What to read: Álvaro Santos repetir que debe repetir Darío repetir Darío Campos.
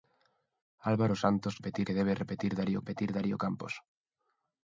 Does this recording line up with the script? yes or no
yes